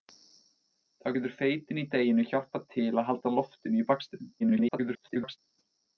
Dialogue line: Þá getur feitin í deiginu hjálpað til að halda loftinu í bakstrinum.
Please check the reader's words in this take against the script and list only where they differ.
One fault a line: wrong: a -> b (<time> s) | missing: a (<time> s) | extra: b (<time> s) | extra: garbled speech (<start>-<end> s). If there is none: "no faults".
extra: garbled speech (4.4-5.4 s)